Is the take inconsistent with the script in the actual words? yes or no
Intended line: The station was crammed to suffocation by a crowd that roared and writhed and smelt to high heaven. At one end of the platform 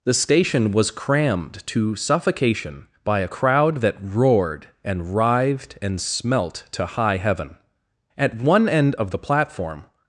no